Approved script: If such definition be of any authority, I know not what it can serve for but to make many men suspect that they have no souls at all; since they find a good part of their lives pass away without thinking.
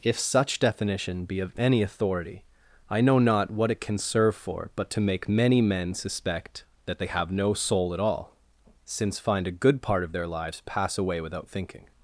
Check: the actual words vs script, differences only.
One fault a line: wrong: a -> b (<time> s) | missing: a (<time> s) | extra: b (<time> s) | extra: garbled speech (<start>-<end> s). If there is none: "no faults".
wrong: souls -> soul (7.5 s)
missing: they (9.2 s)